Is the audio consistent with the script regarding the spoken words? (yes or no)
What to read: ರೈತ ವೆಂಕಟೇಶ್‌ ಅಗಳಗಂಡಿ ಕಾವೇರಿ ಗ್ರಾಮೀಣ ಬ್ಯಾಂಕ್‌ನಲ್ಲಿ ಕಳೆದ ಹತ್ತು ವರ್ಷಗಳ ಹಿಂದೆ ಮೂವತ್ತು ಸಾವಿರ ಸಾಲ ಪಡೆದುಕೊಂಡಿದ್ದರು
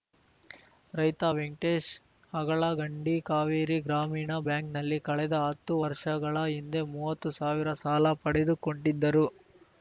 yes